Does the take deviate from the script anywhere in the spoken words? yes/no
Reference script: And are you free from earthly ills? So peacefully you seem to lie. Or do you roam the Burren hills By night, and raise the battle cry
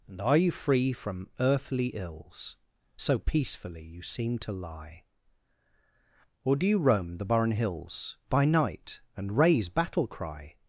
yes